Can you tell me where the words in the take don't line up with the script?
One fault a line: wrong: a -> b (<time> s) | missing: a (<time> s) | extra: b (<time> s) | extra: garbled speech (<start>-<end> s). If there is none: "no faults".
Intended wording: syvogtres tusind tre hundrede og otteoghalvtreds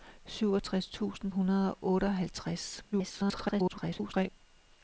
missing: tre (1.3 s)
extra: garbled speech (2.9-4.3 s)